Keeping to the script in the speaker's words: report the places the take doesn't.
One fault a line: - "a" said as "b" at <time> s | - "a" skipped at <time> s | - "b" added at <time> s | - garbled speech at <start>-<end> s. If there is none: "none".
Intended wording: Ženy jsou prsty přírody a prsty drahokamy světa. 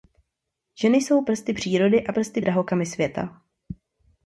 none